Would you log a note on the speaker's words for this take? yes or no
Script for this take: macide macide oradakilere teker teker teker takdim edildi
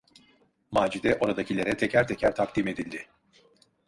yes